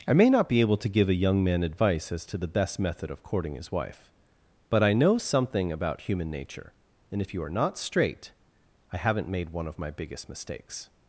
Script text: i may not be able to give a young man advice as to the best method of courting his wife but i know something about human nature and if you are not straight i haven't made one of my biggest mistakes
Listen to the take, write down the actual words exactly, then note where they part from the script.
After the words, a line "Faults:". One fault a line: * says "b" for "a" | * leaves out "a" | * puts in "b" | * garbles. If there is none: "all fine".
i may not be able to give a young man advice as to the best method of courting his wife but i know something about human nature and if you are not straight i haven't made one of my biggest mistakes
Faults:
all fine